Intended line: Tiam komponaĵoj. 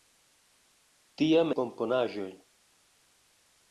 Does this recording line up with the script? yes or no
yes